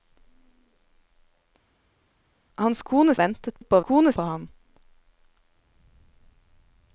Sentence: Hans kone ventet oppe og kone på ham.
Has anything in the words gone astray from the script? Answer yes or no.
no